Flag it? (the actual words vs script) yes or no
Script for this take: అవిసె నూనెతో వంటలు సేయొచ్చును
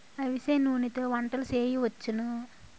no